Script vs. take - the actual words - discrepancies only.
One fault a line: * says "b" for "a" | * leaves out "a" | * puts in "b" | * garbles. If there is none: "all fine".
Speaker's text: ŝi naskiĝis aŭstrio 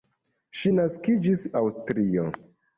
all fine